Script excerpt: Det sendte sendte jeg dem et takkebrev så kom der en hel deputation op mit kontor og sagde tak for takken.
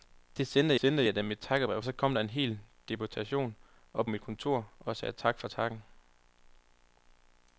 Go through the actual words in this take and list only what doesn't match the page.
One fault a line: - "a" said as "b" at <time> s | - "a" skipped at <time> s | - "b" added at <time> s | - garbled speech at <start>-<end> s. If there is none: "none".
none